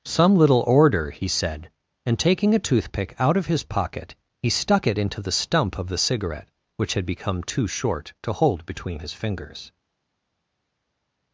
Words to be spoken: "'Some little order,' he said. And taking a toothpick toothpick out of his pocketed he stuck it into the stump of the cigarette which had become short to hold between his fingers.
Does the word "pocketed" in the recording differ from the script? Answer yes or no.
yes